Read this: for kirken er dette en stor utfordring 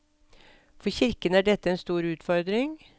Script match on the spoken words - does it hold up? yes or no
yes